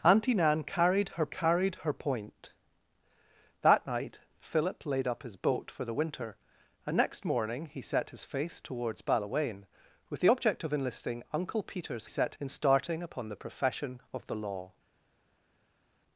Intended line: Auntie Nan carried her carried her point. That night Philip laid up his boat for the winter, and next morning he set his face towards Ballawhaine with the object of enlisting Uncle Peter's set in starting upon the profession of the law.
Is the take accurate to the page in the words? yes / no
yes